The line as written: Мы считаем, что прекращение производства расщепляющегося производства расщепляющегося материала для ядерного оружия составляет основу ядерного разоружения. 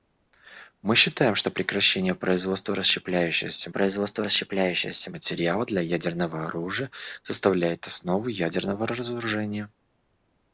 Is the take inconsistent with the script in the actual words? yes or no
no